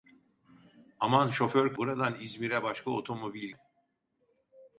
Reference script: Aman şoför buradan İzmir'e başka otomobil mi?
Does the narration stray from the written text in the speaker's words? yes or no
no